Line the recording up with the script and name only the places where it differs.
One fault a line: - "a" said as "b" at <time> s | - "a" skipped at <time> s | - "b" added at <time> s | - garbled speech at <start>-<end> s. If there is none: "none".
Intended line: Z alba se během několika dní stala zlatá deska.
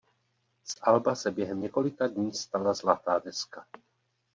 none